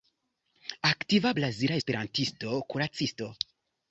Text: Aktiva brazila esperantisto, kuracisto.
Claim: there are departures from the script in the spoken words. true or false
false